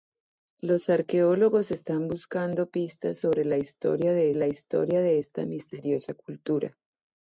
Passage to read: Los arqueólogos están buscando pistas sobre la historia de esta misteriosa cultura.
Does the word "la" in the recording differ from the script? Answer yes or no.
no